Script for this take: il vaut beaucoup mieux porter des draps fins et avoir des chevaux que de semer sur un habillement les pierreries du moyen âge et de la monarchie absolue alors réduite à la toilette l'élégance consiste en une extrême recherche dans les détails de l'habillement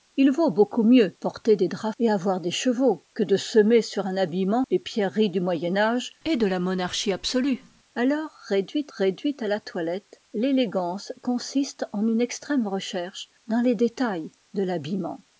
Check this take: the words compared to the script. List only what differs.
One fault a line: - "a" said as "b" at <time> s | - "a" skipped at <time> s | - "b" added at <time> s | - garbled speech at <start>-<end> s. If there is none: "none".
- "fins" skipped at 1.9 s
- "réduite" added at 9.0 s